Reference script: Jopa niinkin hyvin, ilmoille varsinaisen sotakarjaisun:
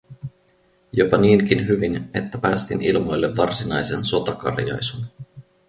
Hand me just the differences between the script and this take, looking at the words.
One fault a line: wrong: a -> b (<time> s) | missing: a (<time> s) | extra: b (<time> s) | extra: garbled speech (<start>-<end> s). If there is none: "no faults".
extra: että päästin (2.1 s)